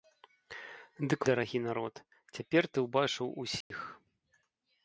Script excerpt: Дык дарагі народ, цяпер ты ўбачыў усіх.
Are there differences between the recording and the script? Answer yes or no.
no